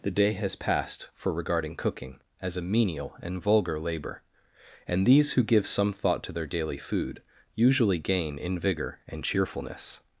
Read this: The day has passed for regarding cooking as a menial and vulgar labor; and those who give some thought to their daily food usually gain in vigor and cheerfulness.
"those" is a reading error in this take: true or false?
true